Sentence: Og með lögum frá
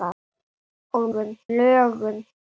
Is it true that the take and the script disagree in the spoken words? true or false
true